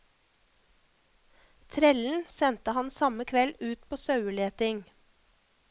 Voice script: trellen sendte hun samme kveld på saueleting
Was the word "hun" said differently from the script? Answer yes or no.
yes